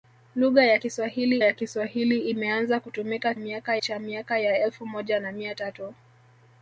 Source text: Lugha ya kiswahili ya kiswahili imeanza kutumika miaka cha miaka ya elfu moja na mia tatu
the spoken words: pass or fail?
pass